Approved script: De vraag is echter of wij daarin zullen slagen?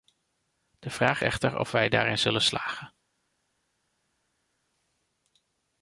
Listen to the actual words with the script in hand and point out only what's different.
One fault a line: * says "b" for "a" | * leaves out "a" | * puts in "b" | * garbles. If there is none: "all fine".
* leaves out "is"